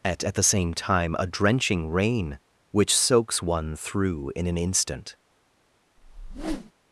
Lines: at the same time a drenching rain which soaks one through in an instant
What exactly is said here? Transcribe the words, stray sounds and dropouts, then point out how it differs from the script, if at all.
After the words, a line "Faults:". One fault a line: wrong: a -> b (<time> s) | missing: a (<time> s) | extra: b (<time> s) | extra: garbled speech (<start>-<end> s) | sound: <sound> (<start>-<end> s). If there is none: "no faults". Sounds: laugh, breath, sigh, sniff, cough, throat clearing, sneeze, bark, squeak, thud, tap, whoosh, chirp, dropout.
at at the same time a drenching rain which soaks one through in an instant
Faults:
extra: at (0.2 s)
sound: whoosh (6.0-6.7 s)